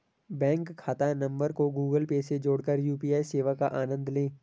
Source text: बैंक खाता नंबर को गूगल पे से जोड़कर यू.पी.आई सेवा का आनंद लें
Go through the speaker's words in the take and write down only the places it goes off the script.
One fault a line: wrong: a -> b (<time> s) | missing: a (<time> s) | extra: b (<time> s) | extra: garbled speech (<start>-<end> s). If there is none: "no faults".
no faults